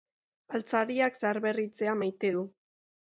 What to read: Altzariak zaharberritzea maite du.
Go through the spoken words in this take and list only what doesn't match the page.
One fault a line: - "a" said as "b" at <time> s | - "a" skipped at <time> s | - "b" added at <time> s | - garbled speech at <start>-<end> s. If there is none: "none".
none